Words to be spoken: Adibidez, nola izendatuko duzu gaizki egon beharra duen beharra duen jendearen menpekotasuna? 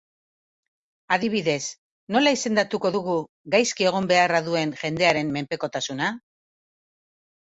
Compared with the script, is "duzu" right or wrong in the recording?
wrong